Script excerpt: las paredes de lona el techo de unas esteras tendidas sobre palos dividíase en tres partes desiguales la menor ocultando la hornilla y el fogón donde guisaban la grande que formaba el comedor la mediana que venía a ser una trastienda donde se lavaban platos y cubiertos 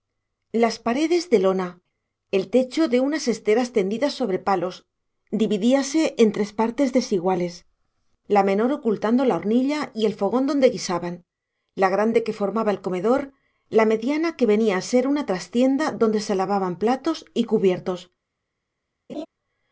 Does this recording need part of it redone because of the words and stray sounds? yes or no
yes